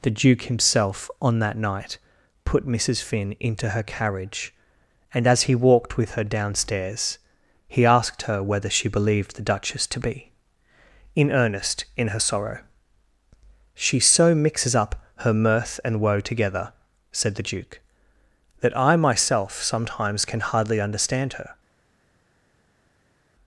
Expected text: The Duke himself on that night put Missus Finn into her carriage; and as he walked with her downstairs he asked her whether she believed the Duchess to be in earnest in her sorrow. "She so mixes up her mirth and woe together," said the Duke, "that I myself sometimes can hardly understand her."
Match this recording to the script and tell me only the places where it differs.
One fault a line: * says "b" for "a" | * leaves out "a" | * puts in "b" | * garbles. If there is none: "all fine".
all fine